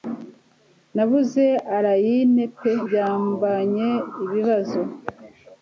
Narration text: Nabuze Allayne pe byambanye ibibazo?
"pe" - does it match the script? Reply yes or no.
yes